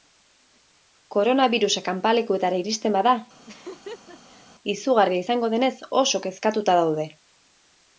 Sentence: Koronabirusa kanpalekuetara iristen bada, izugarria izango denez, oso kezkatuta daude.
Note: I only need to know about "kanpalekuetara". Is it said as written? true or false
true